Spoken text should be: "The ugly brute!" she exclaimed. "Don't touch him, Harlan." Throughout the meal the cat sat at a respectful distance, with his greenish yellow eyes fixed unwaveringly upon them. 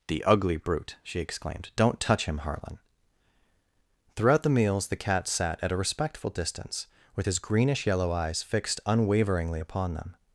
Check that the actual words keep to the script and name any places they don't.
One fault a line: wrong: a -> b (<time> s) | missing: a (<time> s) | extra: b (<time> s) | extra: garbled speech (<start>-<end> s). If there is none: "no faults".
wrong: meal -> meals (4.5 s)